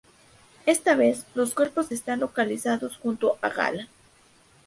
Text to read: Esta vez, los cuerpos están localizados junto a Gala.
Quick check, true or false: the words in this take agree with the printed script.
true